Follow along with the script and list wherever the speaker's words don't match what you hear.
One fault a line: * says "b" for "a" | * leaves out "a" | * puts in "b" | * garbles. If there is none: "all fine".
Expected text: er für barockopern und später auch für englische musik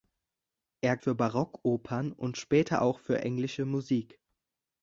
all fine